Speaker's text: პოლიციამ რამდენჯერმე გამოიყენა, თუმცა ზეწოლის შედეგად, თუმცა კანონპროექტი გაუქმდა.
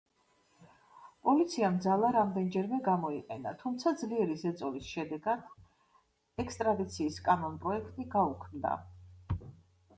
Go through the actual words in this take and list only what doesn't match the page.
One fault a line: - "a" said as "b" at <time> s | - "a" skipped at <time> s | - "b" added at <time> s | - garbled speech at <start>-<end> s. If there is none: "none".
- "ძალა" added at 1.9 s
- "ძლიერი" added at 4.0 s
- "თუმცა" said as "ექსტრადიციის" at 6.5 s